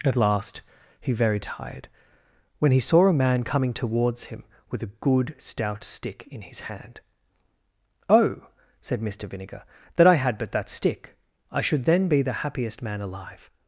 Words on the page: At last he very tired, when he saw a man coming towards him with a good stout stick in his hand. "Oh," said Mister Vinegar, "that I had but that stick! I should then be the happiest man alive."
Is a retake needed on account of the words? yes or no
no